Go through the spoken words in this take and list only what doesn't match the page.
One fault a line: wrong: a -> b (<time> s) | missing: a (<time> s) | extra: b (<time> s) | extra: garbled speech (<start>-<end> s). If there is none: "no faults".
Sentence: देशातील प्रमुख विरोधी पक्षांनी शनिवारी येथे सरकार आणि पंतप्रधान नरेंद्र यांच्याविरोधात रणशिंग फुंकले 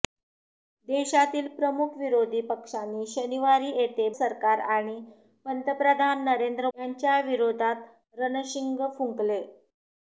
no faults